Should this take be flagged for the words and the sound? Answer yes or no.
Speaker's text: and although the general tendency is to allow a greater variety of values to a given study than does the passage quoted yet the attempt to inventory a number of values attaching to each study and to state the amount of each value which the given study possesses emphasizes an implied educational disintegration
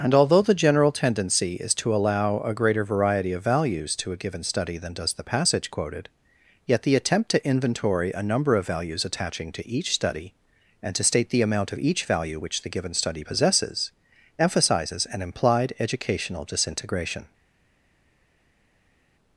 no